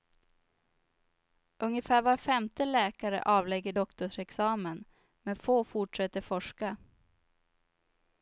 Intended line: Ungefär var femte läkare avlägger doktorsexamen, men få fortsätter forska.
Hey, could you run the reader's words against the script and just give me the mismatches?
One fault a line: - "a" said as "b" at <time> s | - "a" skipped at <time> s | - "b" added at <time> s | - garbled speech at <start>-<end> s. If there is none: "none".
none